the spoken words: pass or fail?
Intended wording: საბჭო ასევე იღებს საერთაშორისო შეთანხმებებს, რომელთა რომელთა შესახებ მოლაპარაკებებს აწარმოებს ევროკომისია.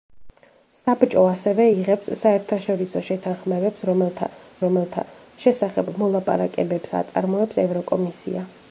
pass